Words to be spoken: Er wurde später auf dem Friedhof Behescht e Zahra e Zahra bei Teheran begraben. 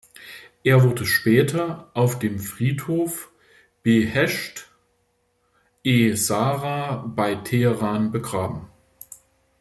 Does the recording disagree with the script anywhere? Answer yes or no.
yes